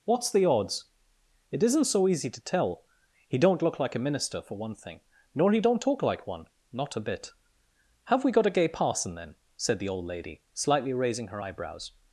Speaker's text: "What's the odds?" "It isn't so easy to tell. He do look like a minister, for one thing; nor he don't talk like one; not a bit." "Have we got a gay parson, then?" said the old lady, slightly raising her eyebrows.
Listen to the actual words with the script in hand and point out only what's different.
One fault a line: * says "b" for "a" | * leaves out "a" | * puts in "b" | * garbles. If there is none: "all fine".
* says "don't" for "do"